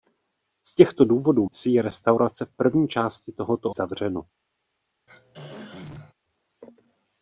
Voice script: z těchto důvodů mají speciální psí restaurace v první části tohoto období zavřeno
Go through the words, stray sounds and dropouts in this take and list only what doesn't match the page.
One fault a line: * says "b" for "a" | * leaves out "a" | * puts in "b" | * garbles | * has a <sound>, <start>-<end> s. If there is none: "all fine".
* leaves out "mají speciální"
* leaves out "období"
* has a throat clearing, 5.1-6.1 s